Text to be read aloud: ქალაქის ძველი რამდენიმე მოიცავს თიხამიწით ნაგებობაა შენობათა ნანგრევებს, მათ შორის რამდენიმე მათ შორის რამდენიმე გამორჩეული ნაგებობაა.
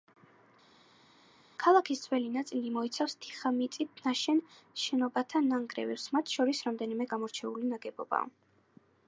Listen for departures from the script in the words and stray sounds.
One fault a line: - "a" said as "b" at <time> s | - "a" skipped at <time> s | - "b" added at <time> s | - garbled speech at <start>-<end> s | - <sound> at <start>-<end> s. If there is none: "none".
- "რამდენიმე" said as "ნაწილი" at 2.3 s
- "ნაგებობაა" said as "ნაშენ" at 4.1 s
- "მათ შორის რამდენიმე" skipped at 7.1 s